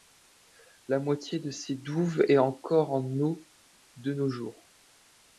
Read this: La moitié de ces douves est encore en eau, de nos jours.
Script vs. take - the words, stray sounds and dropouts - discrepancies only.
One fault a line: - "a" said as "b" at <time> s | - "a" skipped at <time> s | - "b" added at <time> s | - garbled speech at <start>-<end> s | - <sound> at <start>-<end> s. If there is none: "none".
none